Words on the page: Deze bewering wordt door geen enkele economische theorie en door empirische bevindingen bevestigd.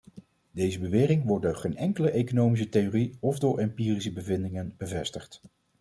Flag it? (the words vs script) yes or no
yes